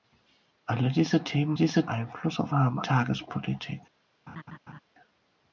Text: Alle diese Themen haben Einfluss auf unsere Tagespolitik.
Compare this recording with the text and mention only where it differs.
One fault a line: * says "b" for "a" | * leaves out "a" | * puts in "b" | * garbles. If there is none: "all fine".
* says "diese" for "haben"
* says "haben" for "unsere"